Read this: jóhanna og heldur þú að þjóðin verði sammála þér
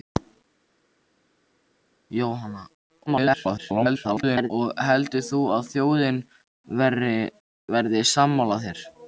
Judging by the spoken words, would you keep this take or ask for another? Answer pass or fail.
fail